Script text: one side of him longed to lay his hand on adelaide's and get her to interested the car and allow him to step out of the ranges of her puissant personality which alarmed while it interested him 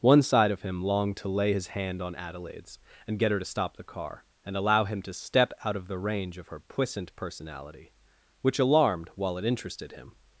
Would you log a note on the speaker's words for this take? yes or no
yes